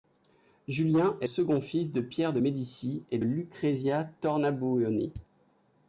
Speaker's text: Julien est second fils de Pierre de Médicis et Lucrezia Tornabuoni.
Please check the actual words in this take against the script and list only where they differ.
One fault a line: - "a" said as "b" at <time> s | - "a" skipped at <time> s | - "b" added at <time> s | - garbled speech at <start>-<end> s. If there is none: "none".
none